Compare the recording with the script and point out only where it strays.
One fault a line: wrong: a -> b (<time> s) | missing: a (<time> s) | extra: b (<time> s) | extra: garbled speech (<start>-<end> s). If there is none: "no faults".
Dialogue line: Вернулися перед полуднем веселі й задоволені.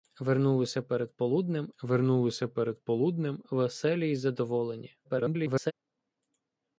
extra: вернулися перед полуднем (1.8 s)
extra: garbled speech (5.0-5.7 s)